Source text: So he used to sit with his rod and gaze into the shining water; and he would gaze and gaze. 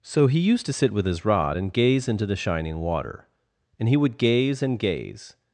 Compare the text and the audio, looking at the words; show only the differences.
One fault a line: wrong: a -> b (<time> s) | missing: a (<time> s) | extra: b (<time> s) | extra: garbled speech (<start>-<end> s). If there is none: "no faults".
no faults